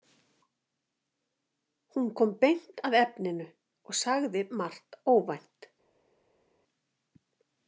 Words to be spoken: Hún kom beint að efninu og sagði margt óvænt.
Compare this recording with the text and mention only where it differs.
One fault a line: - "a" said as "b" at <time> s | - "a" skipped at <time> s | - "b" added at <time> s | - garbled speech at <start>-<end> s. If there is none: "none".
none